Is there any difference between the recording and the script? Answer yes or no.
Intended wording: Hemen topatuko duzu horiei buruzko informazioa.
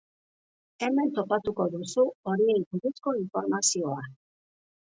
no